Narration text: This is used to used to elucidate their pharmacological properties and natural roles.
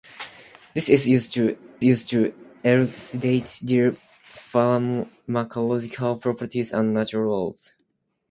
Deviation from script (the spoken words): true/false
false